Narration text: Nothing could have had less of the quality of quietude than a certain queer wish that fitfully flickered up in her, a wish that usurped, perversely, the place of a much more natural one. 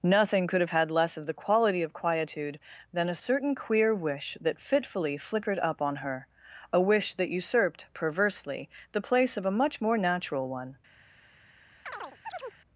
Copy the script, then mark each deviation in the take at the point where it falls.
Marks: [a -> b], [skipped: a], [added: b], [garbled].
Nothing could have had less of the quality of quietude than a certain queer wish that fitfully flickered up [in -> on] her, a wish that usurped, perversely, the place of a much more natural one.